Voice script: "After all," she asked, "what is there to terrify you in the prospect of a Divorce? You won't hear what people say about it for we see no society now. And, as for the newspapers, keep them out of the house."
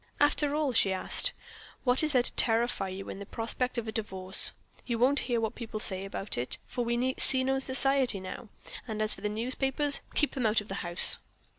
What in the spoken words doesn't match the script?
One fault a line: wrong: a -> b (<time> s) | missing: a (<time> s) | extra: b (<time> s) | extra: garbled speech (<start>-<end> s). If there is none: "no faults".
no faults